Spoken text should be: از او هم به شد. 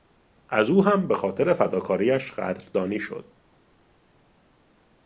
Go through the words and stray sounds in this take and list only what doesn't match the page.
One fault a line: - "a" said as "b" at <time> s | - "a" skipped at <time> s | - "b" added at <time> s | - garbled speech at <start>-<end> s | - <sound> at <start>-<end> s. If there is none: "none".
- "خاطر فداکاریش قدردانی" added at 1.1 s